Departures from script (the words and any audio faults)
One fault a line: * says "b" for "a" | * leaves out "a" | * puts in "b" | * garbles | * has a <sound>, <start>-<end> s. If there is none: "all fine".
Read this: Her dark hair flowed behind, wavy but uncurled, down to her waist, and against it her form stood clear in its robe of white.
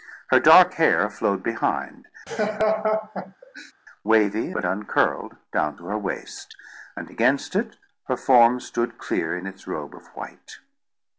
* has a laugh, 2.3-3.7 s